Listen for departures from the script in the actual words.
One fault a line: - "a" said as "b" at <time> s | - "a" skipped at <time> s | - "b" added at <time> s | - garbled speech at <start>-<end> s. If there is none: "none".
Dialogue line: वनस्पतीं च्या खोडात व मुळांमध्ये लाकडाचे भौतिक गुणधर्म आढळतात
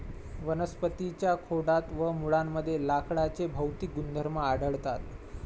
none